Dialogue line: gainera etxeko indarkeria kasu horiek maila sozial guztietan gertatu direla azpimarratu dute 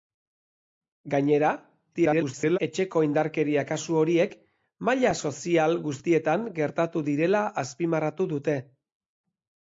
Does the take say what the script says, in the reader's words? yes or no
no